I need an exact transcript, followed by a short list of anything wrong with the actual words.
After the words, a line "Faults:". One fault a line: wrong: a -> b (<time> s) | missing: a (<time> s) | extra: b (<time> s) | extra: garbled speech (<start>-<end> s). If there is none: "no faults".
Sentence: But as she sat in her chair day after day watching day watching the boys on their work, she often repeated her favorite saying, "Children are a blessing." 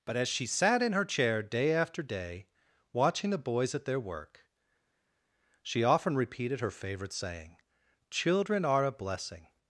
But as she sat in her chair day after day watching the boys at their work, she often repeated her favorite saying, "Children are a blessing."
Faults:
missing: day watching (3.3 s)
wrong: on -> at (3.8 s)